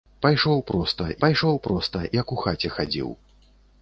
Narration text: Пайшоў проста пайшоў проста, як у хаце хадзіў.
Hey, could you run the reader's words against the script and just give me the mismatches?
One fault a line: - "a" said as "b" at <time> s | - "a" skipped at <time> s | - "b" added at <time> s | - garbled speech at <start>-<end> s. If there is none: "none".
none